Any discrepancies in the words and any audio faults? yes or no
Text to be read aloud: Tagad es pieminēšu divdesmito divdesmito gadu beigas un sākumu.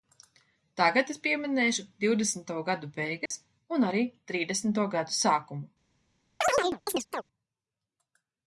yes